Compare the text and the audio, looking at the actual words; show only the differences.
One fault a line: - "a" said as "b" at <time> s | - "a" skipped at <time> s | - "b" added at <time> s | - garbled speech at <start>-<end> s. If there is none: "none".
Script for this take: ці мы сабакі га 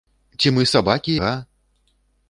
none